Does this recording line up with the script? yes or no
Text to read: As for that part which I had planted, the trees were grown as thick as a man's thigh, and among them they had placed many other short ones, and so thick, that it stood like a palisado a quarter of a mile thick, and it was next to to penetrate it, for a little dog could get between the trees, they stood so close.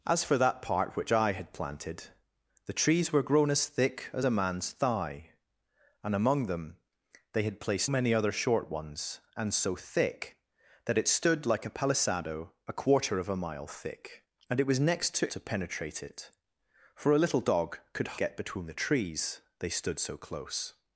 yes